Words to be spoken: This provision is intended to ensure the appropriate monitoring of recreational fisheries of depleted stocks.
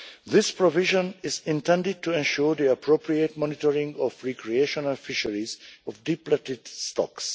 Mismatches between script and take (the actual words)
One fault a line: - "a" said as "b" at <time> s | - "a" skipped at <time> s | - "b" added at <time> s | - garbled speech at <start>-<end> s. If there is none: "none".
none